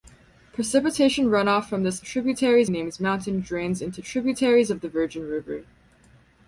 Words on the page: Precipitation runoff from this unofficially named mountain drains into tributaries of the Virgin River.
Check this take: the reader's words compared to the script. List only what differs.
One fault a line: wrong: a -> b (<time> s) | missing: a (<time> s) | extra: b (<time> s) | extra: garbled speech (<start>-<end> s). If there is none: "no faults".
wrong: unofficially -> tributaries (2.0 s)